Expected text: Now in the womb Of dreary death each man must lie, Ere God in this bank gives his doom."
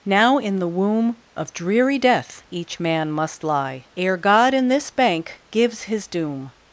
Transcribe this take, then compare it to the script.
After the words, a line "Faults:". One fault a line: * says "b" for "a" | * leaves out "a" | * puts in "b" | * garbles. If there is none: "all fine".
Now in the womb Of dreary death each man must lie, Ere God in this bank gives his doom."
Faults:
all fine